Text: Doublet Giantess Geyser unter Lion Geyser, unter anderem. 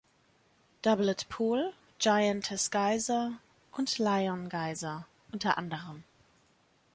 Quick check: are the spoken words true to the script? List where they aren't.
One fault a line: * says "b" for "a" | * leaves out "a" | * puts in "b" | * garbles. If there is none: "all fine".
* puts in "Pool"
* says "und" for "unter"